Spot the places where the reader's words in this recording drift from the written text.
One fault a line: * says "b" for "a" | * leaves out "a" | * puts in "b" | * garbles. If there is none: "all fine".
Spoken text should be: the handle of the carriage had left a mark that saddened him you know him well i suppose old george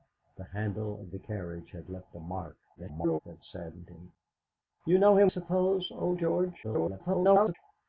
* garbles
* leaves out "well i"
* garbles